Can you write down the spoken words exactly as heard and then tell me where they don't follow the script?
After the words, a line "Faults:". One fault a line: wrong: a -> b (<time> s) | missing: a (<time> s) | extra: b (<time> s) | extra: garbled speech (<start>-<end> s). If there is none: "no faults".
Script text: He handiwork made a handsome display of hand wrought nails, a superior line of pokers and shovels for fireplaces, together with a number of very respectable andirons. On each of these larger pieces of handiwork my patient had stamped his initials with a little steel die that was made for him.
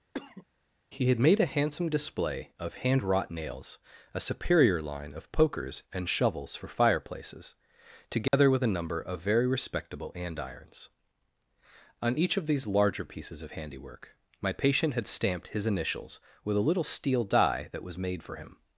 He had made a handsome display of hand wrought nails, a superior line of pokers and shovels for fireplaces, together with a number of very respectable andirons. On each of these larger pieces of handiwork my patient had stamped his initials with a little steel die that was made for him.
Faults:
wrong: handiwork -> had (1.1 s)